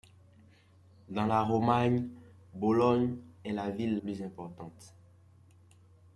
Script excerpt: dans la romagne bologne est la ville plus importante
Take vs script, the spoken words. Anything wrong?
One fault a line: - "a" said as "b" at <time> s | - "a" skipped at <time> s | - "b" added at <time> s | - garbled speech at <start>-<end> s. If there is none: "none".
none